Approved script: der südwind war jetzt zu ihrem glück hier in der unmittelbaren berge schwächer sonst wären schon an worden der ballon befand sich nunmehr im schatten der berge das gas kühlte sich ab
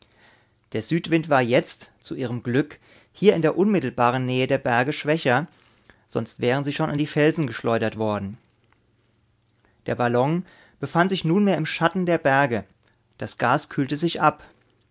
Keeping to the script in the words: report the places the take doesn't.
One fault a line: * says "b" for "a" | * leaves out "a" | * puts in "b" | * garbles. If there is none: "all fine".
* puts in "nähe der"
* puts in "sie"
* puts in "die felsen geschleudert"